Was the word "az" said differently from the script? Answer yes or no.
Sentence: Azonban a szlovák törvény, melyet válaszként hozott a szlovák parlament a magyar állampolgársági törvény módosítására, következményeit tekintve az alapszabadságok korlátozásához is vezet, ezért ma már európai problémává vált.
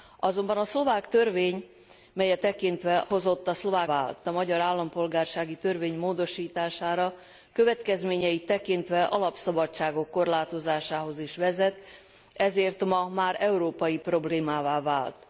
yes